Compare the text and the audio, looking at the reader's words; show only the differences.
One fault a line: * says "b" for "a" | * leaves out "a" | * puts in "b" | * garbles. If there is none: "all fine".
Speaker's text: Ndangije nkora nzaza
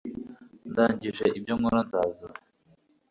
* puts in "ibyo"